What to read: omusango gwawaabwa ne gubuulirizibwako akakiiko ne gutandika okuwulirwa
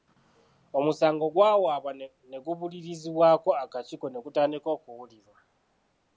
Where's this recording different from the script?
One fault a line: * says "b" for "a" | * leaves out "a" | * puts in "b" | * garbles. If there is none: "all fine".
all fine